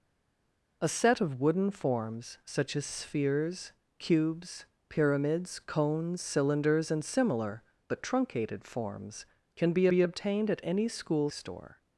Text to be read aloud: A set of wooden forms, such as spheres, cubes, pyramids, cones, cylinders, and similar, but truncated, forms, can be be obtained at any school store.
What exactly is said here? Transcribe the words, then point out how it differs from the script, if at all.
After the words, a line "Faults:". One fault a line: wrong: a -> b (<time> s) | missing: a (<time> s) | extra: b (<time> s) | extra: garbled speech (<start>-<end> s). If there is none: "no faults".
A set of wooden forms, such as spheres, cubes, pyramids, cones, cylinders, and similar, but truncated, forms, can be be obtained at any school store.
Faults:
no faults